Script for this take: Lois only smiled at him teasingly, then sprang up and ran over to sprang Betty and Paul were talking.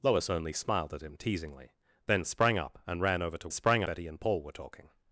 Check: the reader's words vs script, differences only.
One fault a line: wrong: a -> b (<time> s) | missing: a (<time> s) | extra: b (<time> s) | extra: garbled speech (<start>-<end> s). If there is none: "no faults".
no faults